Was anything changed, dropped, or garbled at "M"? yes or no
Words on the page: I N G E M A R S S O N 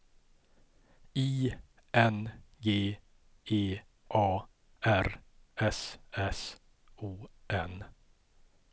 yes